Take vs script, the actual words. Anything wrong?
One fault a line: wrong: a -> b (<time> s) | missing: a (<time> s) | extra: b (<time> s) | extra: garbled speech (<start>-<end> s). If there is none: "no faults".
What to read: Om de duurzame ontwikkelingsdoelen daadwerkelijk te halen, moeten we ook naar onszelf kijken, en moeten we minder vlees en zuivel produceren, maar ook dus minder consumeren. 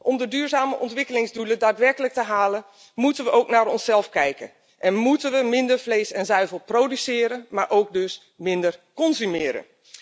no faults